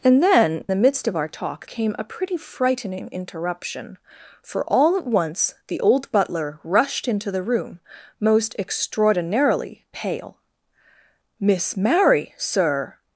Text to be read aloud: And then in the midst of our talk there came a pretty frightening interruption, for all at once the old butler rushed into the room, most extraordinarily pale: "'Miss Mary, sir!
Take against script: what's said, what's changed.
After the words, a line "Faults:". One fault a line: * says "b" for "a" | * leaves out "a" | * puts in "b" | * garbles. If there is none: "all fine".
And then the midst of our talk came a pretty frightening interruption, for all at once the old butler rushed into the room, most extraordinarily pale: "'Miss Mary, sir!
Faults:
* leaves out "in"
* leaves out "there"